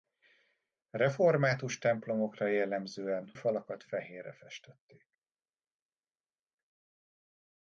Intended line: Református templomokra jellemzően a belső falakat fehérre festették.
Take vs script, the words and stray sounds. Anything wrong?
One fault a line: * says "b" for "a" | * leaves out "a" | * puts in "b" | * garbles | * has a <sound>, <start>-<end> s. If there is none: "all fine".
* leaves out "a belső"